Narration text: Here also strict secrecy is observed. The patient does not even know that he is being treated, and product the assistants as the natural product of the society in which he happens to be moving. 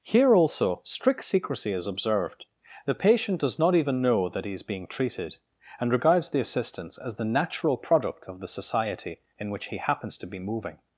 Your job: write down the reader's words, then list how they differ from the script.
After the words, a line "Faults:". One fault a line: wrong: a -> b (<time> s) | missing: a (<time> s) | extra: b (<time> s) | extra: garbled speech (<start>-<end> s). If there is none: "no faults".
Here also strict secrecy is observed. The patient does not even know that he is being treated, and regards the assistants as the natural product of the society in which he happens to be moving.
Faults:
wrong: product -> regards (5.9 s)